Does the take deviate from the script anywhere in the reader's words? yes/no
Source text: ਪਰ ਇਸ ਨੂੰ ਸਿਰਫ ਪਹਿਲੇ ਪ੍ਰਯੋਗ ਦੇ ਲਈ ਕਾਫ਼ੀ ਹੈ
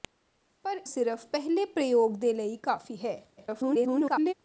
yes